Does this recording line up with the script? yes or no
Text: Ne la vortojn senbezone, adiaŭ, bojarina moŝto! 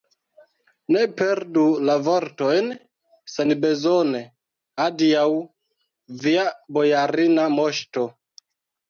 no